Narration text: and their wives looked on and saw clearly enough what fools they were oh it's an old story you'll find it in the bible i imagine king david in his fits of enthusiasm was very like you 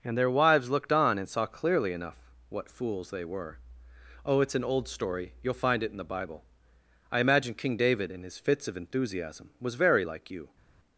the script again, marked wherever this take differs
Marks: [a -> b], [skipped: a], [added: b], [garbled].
and their wives looked on and saw clearly enough what fools they were oh it's an old story you'll find it in the bible i imagine king david in his fits of enthusiasm was very like you